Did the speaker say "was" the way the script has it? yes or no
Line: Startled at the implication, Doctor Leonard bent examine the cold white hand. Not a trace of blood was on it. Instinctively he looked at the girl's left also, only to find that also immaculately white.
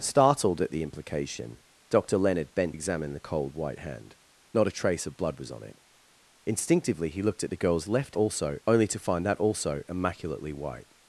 yes